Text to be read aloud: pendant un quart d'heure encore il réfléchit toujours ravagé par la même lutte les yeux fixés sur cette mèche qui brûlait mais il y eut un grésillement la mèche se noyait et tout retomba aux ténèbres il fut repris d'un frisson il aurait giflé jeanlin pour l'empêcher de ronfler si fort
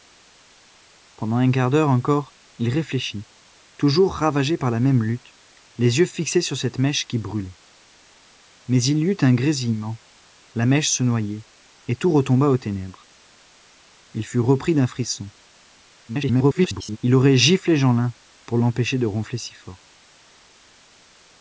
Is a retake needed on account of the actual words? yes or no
yes